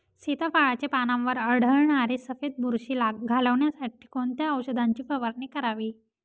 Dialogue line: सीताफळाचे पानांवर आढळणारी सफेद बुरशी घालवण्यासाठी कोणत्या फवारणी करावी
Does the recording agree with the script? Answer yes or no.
no